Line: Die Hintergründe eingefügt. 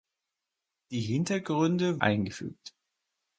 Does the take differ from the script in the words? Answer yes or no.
no